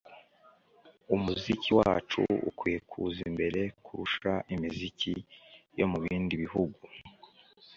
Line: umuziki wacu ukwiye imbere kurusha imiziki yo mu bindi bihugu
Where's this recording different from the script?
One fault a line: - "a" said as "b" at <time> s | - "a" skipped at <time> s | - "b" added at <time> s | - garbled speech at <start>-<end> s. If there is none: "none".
- "kuza" added at 2.9 s